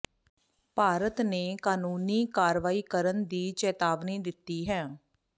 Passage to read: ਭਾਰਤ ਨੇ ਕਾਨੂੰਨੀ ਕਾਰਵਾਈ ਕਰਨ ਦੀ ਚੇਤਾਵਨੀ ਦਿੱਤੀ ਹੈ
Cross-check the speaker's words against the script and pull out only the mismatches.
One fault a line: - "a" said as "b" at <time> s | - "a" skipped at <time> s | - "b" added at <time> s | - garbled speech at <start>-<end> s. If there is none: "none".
none